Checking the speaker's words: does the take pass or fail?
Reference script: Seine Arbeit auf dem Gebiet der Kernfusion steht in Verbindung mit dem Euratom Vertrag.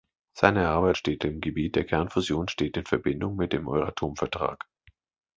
fail